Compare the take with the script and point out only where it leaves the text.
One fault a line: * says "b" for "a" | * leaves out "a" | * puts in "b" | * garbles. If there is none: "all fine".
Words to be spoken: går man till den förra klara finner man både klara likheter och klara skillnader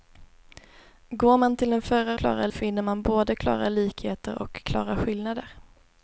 all fine